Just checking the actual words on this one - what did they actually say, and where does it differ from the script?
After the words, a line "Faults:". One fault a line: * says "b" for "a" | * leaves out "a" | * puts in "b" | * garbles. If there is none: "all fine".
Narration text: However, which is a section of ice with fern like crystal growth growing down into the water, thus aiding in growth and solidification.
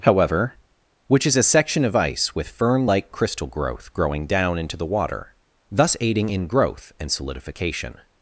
However, which is a section of ice with fern like crystal growth growing down into the water, thus aiding in growth and solidification.
Faults:
all fine